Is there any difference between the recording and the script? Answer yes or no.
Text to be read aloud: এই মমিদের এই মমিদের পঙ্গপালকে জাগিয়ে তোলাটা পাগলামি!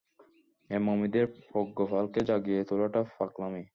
yes